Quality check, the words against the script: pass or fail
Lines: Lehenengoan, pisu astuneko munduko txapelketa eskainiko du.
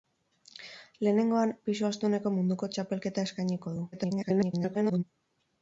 fail